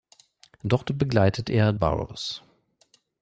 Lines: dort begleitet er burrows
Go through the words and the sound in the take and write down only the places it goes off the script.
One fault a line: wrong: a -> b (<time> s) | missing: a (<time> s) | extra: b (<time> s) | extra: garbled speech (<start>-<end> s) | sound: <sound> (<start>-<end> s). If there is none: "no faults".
no faults